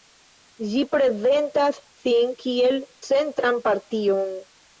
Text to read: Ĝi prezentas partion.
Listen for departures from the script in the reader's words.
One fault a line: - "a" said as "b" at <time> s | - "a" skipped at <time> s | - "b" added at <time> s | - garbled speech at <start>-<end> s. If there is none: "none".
- "sin kiel centran" added at 2.0 s